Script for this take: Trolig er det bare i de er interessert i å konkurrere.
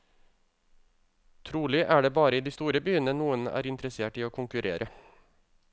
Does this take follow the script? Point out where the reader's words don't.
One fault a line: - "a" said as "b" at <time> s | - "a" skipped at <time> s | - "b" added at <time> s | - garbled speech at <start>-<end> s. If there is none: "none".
- "store byene noen" added at 2.5 s